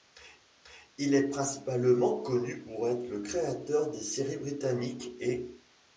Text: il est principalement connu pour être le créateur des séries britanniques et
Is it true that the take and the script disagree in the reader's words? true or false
false